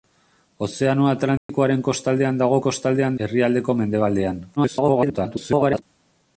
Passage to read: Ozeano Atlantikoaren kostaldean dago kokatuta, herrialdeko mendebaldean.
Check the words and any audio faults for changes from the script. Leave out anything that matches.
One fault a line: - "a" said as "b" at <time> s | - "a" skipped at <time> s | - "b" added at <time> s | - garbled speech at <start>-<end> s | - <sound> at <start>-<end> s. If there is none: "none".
- dropout at 1.4-1.5 s
- "kokatuta" said as "kostaldean" at 2.7 s
- garbled speech at 4.6-5.8 s